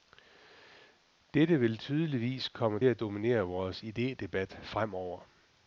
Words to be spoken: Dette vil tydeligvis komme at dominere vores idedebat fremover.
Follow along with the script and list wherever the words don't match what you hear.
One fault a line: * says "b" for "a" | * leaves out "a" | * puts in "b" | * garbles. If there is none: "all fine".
all fine